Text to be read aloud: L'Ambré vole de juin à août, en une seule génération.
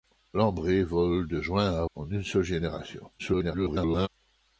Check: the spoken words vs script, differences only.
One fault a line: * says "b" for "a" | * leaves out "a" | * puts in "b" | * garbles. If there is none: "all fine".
* leaves out "août"
* garbles